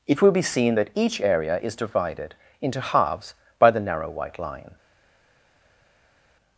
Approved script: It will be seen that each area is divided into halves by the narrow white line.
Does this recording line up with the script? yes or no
yes